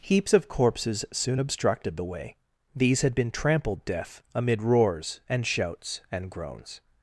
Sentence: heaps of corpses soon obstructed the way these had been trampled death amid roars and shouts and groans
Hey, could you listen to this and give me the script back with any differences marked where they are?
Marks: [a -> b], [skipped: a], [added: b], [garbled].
heaps of corpses soon obstructed the way these had been trampled death amid roars and shouts and groans